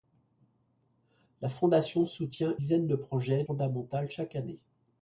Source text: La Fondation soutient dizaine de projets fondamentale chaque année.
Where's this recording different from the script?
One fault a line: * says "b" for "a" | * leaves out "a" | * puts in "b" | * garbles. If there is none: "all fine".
all fine